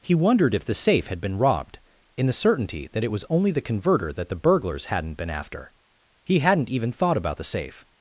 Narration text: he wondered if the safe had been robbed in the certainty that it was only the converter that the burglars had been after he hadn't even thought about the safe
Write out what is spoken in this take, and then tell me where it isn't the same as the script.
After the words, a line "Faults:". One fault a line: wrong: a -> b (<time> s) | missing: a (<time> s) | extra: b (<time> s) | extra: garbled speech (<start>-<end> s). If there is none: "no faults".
he wondered if the safe had been robbed in the certainty that it was only the converter that the burglars hadn't been after he hadn't even thought about the safe
Faults:
wrong: had -> hadn't (4.9 s)